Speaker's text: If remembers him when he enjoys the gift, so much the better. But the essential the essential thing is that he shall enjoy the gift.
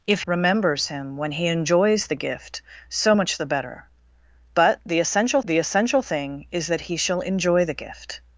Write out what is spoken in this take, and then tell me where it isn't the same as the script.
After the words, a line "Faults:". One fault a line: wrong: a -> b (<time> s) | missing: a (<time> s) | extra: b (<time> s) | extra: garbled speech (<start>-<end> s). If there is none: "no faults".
If remembers him when he enjoys the gift, so much the better. But the essential the essential thing is that he shall enjoy the gift.
Faults:
no faults